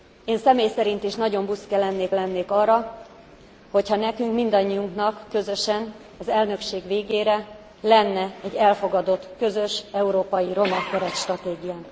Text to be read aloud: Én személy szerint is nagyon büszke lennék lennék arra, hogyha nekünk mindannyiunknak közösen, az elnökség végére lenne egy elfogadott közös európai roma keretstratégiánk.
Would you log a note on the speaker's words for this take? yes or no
no